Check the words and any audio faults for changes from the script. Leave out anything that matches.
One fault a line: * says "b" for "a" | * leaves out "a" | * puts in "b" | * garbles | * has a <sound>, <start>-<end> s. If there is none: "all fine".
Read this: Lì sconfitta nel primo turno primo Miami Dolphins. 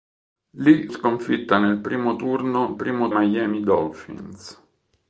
all fine